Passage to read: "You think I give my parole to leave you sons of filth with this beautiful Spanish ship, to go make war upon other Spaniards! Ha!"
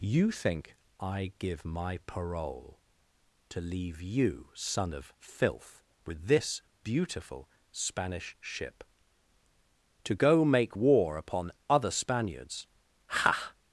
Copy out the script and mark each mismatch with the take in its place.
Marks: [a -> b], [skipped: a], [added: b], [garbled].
"You think I give my parole to leave you [sons -> son] of filth with this beautiful Spanish ship, to go make war upon other Spaniards! Ha!"